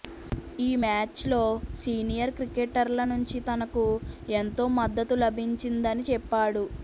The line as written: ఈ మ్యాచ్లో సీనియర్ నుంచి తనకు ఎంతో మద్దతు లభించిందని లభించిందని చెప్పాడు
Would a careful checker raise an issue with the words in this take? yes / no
yes